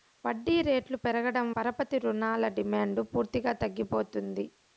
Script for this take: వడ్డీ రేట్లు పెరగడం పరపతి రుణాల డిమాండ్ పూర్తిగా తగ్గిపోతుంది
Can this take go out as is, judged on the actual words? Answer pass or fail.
pass